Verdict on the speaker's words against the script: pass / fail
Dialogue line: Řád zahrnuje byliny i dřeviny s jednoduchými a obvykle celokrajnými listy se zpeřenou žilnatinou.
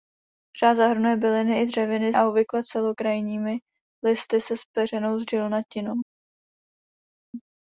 fail